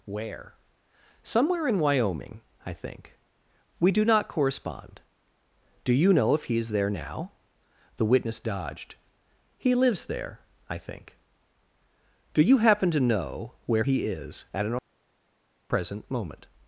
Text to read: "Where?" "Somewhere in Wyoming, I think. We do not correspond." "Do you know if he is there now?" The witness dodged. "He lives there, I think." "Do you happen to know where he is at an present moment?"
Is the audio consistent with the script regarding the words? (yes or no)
yes